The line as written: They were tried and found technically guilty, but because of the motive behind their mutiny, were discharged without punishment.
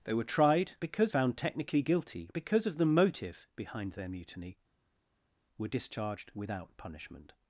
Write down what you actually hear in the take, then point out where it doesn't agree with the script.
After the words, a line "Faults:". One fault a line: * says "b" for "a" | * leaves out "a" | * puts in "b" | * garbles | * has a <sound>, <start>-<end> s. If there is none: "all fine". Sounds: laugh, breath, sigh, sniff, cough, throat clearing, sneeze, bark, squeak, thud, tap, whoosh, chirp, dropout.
They were tried because found technically guilty, because of the motive behind their mutiny, were discharged without punishment.
Faults:
* says "because" for "and"
* leaves out "but"